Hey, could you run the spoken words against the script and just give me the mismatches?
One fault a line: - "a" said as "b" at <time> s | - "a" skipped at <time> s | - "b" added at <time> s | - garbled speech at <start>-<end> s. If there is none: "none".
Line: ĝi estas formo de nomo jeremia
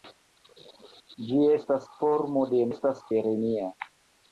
- "nomo" said as "estas" at 2.7 s